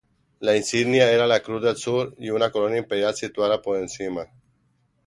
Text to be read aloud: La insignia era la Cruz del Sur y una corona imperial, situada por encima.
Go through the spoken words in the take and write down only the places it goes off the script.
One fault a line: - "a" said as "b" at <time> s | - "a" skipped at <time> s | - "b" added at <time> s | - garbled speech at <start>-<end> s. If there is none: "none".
none